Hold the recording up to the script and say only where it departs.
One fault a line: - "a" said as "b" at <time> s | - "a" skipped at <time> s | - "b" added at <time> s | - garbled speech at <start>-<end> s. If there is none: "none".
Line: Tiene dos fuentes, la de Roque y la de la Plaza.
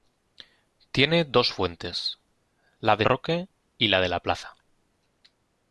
none